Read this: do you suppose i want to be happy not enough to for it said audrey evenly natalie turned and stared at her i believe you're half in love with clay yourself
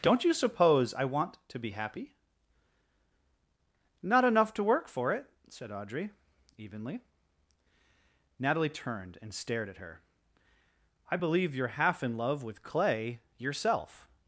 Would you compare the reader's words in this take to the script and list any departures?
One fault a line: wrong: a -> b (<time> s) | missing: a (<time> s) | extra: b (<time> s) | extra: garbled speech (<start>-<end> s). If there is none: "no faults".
wrong: do -> don't (0.0 s)
extra: work (4.6 s)